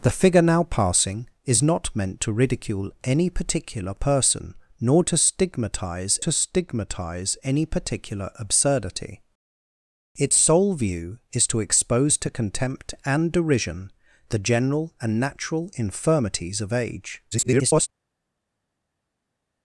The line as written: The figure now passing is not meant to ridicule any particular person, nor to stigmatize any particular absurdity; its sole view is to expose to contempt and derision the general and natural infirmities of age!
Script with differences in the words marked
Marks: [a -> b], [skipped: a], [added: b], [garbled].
The figure now passing is not meant to ridicule any particular person, nor to stigmatize [added: to stigmatize] any particular absurdity; its sole view is to expose to contempt and derision the general and natural infirmities of age! [garbled]